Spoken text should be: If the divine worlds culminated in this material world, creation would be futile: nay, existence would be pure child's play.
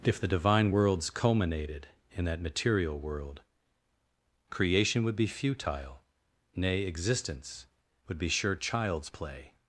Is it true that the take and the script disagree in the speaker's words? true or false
true